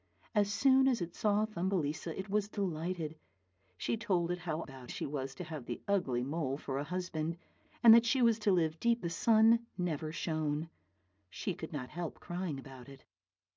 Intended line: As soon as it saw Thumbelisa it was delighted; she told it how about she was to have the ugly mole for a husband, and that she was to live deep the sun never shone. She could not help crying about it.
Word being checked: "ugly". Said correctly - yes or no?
yes